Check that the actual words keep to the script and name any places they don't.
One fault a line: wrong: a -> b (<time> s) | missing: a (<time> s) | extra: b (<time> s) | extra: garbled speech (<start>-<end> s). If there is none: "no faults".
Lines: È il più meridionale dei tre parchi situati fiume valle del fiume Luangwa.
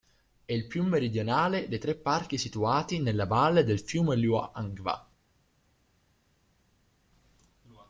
wrong: fiume -> nella (3.0 s)